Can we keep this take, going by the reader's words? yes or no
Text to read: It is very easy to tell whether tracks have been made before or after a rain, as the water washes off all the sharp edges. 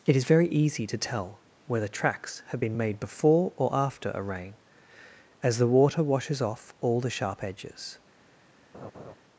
yes